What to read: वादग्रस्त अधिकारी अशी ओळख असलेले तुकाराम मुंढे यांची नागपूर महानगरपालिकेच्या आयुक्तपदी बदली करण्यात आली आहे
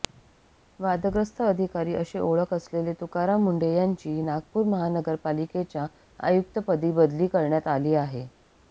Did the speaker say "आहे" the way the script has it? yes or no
yes